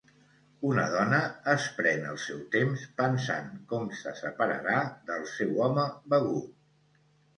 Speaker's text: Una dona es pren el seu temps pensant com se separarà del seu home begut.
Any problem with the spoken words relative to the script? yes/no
no